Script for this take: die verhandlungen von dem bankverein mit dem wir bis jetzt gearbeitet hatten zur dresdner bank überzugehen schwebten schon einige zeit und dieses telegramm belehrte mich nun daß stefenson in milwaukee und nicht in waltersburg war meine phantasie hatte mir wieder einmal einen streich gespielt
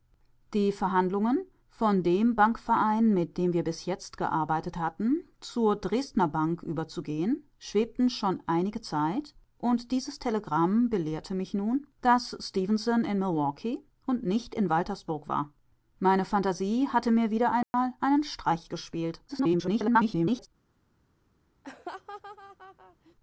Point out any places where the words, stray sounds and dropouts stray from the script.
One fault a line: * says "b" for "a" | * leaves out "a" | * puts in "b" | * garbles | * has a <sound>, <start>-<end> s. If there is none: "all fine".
* has a dropout, 17.6-17.7 s
* garbles
* has a laugh, 21.6-23.1 s